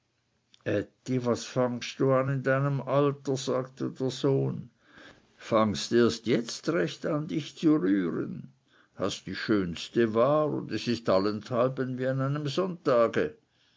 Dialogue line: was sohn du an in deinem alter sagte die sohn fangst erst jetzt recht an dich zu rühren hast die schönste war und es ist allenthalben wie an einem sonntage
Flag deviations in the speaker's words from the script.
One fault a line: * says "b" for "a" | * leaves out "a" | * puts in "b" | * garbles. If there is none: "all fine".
* says "fangst" for "sohn"
* says "der" for "die"